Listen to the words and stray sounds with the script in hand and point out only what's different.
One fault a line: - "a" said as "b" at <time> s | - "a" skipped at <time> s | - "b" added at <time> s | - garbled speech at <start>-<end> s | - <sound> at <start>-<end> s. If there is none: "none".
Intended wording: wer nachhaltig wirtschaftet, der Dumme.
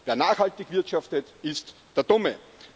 - "ist" added at 1.4 s